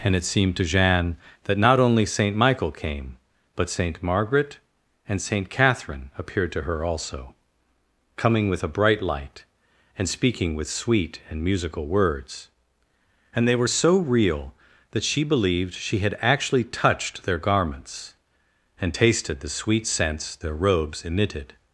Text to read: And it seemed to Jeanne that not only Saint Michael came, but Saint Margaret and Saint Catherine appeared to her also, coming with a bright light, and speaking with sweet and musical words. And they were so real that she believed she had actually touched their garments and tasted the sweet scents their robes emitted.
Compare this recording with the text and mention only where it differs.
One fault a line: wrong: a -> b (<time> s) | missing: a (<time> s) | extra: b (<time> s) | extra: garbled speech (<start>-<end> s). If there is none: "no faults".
no faults